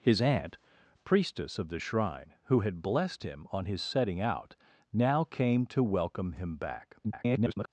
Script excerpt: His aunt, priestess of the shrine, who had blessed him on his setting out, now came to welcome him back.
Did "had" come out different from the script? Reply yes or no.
no